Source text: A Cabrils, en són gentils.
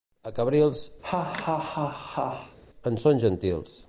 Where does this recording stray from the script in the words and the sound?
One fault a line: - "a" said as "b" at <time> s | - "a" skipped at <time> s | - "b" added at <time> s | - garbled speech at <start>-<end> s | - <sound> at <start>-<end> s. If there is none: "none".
- laugh at 1.0-2.6 s